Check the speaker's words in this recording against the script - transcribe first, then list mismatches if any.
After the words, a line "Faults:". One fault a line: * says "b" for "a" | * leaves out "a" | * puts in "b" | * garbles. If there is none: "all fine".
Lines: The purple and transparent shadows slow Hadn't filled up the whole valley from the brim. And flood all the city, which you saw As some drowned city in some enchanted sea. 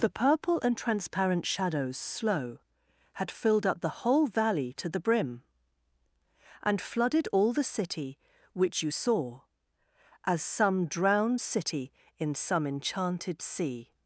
The purple and transparent shadows slow Had filled up the whole valley to the brim. And flooded all the city, which you saw As some drowned city in some enchanted sea.
Faults:
* says "Had" for "Hadn't"
* says "to" for "from"
* says "flooded" for "flood"